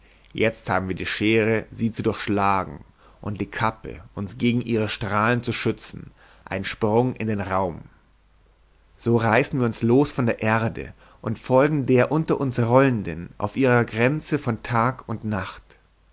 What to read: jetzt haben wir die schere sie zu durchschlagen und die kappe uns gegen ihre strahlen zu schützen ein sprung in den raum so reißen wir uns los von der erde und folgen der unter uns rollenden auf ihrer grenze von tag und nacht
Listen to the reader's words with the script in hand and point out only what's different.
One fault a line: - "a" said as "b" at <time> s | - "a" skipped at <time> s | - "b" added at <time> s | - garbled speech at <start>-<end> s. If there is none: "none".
none